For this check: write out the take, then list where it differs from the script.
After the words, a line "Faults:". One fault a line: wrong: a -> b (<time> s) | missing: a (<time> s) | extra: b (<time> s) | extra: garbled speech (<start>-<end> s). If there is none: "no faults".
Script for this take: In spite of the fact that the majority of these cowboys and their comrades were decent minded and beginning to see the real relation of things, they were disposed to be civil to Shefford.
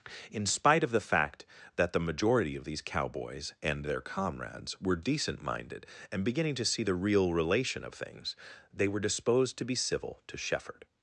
In spite of the fact that the majority of these cowboys and their comrades were decent minded and beginning to see the real relation of things, they were disposed to be civil to Shefford.
Faults:
no faults